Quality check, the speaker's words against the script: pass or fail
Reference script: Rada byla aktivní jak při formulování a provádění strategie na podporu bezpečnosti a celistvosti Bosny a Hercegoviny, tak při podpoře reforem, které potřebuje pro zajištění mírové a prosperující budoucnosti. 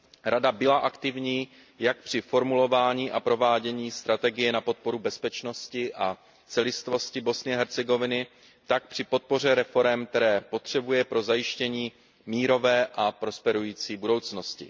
pass